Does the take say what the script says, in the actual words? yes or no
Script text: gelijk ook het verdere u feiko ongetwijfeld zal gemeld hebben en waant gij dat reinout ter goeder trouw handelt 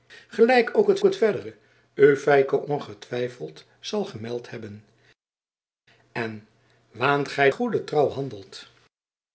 no